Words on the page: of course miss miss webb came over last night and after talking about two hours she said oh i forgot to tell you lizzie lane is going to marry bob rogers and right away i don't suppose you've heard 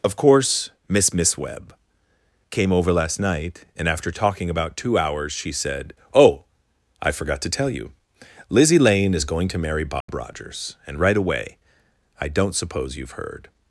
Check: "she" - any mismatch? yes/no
no